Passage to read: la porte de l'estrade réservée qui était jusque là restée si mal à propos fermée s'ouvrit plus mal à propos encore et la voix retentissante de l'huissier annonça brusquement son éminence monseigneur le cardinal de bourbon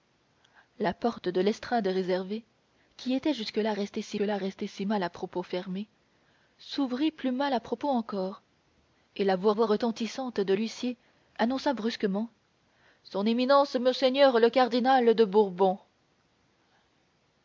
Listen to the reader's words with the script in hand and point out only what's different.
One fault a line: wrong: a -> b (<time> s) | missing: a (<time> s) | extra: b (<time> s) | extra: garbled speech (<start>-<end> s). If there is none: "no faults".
extra: là restée si (4.2 s)
extra: voix (9.5 s)